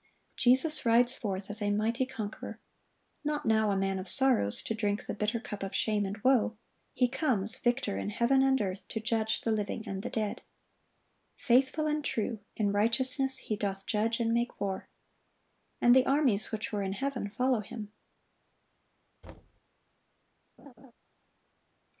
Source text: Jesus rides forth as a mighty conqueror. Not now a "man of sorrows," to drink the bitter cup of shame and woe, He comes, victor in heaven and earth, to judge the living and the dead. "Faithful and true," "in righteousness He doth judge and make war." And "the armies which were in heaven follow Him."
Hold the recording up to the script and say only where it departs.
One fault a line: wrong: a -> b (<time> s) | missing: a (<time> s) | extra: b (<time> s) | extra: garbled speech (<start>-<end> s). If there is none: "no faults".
no faults